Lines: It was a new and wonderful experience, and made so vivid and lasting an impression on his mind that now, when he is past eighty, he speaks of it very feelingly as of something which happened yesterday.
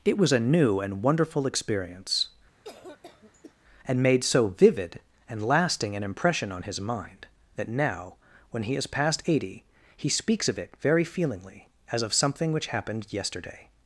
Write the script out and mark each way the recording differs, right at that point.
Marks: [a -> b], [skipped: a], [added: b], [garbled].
It was a new and wonderful experience, and made so vivid and lasting an impression on his mind that now, when he is past eighty, he speaks of it very feelingly as of something which happened yesterday.